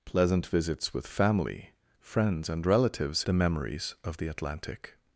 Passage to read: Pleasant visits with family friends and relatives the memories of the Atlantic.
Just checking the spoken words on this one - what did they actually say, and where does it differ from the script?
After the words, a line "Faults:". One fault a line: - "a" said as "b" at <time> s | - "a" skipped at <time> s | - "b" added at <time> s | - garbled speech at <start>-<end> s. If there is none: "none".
Pleasant visits with family friends and relatives the memories of the Atlantic.
Faults:
none